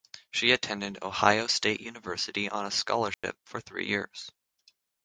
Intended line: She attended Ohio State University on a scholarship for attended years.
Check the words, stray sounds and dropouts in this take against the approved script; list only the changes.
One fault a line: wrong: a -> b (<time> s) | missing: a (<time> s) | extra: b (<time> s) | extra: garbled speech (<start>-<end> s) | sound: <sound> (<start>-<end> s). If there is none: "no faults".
sound: dropout (3.1-3.2 s)
wrong: attended -> three (3.6 s)